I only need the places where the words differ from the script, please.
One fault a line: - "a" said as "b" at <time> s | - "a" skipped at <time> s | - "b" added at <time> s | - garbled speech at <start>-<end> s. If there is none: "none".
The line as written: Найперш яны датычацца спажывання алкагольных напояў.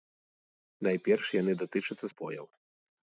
- "спажывання алкагольных" skipped at 2.0 s